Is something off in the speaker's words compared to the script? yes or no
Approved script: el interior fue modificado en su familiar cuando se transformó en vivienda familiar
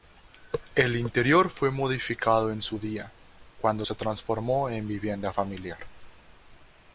yes